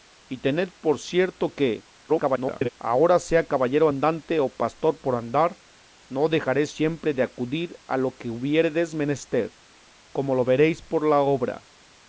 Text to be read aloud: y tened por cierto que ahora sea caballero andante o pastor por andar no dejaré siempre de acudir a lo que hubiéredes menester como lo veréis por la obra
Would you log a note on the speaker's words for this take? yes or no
yes